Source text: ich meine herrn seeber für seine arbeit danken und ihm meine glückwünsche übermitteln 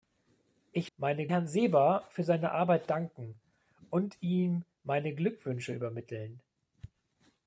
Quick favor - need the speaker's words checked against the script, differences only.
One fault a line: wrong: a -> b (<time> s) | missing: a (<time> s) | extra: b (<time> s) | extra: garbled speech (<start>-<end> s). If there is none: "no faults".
no faults